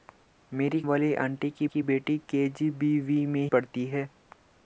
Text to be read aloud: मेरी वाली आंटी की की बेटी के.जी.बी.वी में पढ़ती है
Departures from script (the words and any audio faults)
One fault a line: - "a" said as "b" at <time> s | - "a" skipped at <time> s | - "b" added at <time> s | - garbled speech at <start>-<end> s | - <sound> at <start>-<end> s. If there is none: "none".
none